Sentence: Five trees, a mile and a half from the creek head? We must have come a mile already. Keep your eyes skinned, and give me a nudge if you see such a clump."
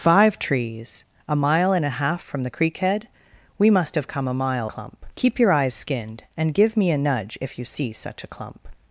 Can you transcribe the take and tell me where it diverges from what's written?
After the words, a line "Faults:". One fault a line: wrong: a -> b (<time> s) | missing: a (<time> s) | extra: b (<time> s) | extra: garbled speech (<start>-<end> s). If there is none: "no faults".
Five trees, a mile and a half from the creek head? We must have come a mile clump. Keep your eyes skinned, and give me a nudge if you see such a clump."
Faults:
wrong: already -> clump (4.6 s)